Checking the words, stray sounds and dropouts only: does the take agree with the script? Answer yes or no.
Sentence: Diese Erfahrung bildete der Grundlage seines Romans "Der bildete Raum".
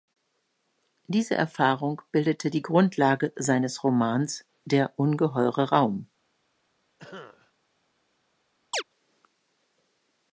no